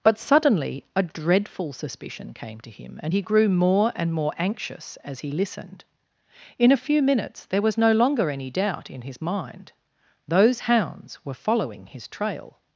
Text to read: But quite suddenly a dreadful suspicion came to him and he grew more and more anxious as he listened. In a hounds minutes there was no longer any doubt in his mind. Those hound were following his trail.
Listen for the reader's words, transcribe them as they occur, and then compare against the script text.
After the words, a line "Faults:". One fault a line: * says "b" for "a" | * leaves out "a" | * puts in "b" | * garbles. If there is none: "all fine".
But suddenly a dreadful suspicion came to him and he grew more and more anxious as he listened. In a few minutes there was no longer any doubt in his mind. Those hounds were following his trail.
Faults:
* leaves out "quite"
* says "few" for "hounds"
* says "hounds" for "hound"